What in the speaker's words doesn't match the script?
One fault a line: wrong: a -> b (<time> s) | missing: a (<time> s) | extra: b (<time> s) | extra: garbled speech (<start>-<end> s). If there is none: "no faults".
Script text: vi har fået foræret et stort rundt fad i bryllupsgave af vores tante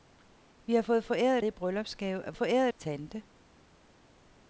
missing: stort rundt fad (1.4 s)
wrong: vores -> foræret (2.3 s)